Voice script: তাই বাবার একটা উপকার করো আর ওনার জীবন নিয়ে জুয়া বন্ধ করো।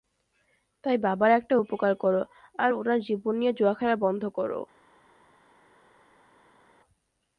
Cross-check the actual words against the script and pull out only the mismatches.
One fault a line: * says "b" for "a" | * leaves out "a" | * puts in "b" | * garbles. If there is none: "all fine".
* puts in "খেলা"